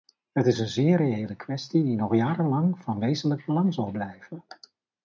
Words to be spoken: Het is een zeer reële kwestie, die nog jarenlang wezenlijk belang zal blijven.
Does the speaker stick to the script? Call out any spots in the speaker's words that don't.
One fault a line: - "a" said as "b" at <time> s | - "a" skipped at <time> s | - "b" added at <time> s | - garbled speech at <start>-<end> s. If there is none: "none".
- "van" added at 2.8 s